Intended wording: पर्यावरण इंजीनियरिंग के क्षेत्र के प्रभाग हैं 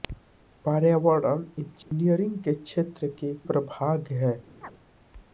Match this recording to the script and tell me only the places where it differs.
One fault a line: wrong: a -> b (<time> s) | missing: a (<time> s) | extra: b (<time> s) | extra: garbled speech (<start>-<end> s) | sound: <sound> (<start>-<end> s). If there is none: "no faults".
sound: dropout (1.8-1.9 s)
sound: chirp (4.6-4.7 s)